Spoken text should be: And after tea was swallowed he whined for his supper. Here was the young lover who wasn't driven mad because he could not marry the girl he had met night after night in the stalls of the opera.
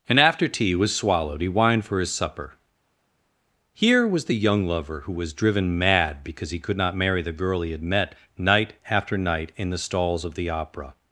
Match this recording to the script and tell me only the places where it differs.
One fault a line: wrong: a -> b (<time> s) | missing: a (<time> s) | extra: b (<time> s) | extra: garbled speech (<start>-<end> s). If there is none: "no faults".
wrong: wasn't -> was (5.1 s)